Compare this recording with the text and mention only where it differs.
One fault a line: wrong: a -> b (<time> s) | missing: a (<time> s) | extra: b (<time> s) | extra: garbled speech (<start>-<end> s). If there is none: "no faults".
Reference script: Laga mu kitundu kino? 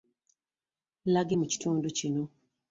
no faults